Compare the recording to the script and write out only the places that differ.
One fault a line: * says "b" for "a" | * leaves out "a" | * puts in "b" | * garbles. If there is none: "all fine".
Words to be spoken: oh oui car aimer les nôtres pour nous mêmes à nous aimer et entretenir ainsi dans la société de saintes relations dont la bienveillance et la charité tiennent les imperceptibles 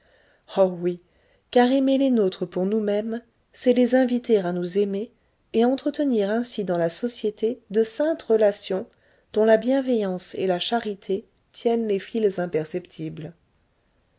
* puts in "c'est les inviter"
* puts in "fils"